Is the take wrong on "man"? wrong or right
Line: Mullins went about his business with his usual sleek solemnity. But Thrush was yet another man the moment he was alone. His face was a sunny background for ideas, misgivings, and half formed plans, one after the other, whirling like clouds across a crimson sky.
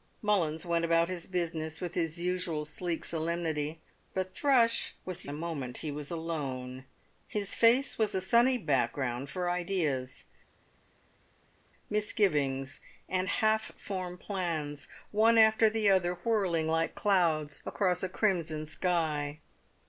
wrong